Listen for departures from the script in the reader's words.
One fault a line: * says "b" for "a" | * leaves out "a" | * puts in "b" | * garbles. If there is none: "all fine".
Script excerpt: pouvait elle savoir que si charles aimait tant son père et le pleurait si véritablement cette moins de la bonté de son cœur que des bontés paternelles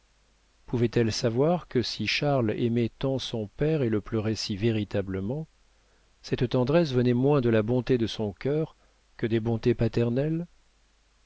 * puts in "tendresse venait"